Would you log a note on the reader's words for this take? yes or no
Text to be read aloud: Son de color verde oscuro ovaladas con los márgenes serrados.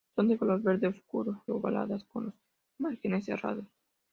no